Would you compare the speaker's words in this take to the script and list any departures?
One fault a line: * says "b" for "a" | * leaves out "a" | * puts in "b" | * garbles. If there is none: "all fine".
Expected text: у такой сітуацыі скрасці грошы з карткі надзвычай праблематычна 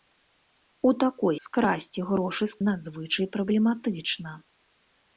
* leaves out "сітуацыі"
* leaves out "карткі"